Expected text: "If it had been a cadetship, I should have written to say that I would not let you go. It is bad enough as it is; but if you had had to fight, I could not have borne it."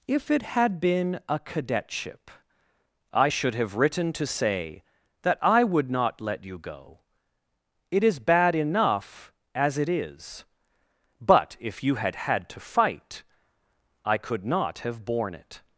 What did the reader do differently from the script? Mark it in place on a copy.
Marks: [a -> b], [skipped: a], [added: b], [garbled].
"If it had been a cadetship, I should have written to say that I would not let you go. It is bad enough as it is; but if you had had to fight, I could not have borne it."